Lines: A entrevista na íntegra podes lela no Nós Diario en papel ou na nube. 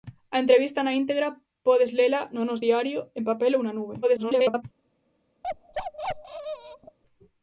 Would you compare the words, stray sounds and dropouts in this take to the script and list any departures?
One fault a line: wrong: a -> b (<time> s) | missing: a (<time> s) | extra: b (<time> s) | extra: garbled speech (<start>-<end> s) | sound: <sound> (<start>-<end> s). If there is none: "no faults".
extra: garbled speech (4.0-4.6 s)
sound: bark (5.4-7.0 s)